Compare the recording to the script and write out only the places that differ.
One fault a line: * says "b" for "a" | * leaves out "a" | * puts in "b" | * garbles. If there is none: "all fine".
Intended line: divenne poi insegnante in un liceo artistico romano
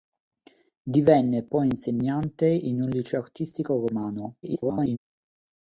* garbles